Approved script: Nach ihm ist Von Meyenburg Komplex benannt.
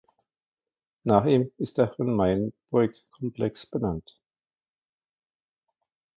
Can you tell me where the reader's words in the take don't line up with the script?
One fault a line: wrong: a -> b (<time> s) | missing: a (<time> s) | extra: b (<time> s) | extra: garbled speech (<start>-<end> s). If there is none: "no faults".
extra: der (1.8 s)